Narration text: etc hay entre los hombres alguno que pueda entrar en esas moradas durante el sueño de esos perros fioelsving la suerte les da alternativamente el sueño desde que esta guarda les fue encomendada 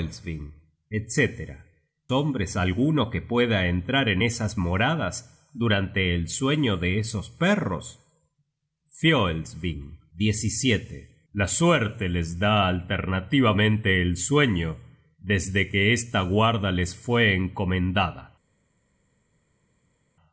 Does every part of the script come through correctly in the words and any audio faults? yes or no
no